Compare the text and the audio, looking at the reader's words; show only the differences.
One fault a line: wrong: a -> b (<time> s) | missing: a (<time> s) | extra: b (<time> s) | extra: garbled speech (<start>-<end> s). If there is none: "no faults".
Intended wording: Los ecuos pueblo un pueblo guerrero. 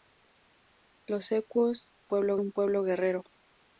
no faults